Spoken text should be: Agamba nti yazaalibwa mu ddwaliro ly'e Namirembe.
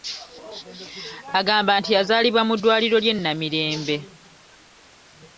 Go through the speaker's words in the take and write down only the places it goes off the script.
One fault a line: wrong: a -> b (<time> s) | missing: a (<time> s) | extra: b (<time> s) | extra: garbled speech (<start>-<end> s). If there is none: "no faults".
no faults